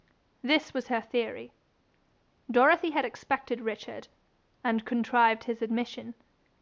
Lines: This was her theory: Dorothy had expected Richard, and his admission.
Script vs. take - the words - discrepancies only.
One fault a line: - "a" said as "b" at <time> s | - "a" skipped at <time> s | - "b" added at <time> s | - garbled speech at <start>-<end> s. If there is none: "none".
- "contrived" added at 4.8 s